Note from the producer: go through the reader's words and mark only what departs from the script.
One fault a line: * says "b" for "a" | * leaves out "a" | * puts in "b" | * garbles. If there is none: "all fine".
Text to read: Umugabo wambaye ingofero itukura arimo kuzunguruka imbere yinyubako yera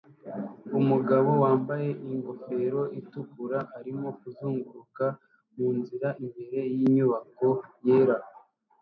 * puts in "munzira"